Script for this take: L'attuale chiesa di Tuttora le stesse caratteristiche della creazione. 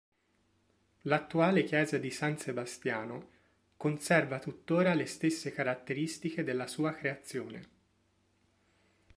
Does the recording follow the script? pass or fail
fail